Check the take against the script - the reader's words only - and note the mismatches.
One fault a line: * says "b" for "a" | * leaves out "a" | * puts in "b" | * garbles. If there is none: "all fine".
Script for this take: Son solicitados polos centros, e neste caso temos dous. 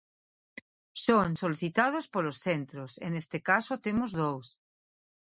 all fine